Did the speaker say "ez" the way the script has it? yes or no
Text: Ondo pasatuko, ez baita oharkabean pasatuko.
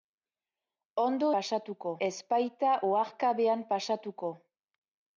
yes